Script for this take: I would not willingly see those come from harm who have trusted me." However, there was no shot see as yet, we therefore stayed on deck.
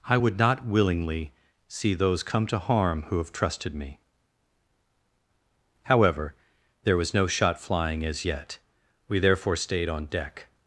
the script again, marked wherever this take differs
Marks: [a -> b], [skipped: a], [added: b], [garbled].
I would not willingly see those come [from -> to] harm who have trusted me." However, there was no shot [see -> flying] as yet, we therefore stayed on deck.